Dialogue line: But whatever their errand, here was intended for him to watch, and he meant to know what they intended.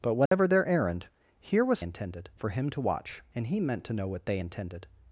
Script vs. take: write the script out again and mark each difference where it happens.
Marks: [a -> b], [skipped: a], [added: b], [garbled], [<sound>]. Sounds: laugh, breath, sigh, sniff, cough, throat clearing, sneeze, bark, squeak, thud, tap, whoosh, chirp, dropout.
But whatever [dropout] their errand, here was intended for him to watch, and he meant to know what they intended.